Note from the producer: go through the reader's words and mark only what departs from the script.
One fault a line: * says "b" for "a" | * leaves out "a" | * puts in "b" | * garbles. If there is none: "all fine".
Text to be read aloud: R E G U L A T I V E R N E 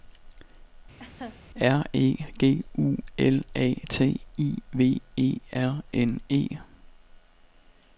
all fine